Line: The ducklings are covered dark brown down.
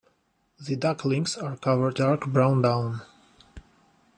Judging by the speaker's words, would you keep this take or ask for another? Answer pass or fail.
pass